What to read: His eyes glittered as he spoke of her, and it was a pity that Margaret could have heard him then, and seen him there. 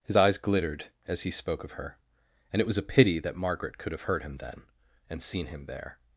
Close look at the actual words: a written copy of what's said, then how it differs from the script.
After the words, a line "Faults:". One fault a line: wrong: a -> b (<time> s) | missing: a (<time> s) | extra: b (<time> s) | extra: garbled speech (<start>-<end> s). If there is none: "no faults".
His eyes glittered as he spoke of her, and it was a pity that Margaret could have heard him then, and seen him there.
Faults:
no faults